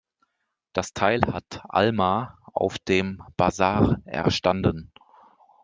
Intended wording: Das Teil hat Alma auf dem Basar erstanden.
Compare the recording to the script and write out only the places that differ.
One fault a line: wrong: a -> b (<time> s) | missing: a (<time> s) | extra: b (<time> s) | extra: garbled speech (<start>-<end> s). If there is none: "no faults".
no faults